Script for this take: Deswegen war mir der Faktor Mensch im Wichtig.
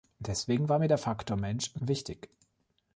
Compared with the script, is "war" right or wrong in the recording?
right